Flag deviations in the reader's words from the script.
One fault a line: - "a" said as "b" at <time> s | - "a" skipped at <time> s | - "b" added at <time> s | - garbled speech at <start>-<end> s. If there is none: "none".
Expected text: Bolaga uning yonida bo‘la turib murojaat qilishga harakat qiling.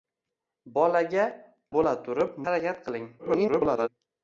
- "uning yonida" skipped at 1.2 s
- "murojaat qilishga" skipped at 2.4 s
- garbled speech at 3.2-3.9 s